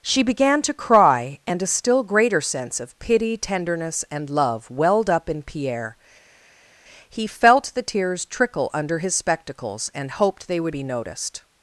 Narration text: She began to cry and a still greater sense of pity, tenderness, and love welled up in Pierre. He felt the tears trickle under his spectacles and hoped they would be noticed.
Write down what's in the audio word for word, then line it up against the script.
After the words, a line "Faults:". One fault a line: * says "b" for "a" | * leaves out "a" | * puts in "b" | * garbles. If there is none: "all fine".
She began to cry and a still greater sense of pity, tenderness, and love welled up in Pierre. He felt the tears trickle under his spectacles and hoped they would be noticed.
Faults:
all fine